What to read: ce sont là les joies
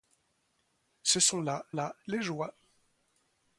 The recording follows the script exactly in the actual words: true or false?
false